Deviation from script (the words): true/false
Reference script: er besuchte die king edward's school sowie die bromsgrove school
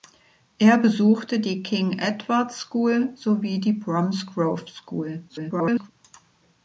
true